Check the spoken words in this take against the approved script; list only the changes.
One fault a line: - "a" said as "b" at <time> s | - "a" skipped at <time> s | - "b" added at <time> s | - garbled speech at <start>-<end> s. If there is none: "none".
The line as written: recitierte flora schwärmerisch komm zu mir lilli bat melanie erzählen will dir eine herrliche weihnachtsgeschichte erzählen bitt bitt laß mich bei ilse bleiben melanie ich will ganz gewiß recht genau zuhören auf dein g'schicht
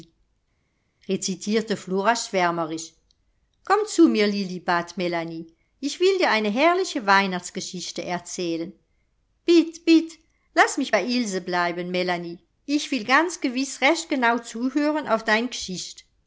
- "erzählen" said as "ich" at 5.8 s